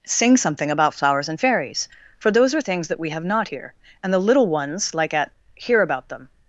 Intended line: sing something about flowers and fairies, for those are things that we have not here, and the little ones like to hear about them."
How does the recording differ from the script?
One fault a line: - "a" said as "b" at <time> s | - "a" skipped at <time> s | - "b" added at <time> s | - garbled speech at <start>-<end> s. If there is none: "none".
- "to" said as "at" at 5.1 s